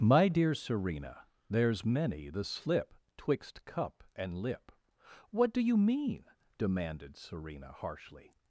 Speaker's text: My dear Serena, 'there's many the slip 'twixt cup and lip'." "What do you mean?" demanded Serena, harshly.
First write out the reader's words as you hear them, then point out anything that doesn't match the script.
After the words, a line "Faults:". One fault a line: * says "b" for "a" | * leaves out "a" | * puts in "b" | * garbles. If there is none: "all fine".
My dear Serena, 'there's many the slip 'twixt cup and lip'." "What do you mean?" demanded Serena, harshly.
Faults:
all fine